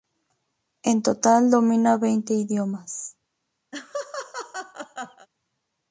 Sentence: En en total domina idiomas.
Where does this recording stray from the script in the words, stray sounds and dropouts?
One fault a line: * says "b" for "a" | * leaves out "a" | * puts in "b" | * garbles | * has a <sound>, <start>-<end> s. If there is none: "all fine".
* leaves out "en"
* puts in "veinte"
* has a laugh, 3.7-5.3 s